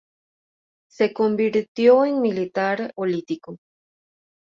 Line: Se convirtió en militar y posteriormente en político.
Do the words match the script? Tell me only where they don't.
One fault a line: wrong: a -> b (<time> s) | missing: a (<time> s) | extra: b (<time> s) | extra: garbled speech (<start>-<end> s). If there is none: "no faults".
missing: y posteriormente en (3.0 s)